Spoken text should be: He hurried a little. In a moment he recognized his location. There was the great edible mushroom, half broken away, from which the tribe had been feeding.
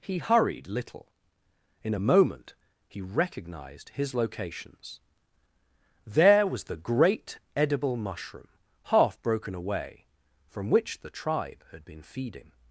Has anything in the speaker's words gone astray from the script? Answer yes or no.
yes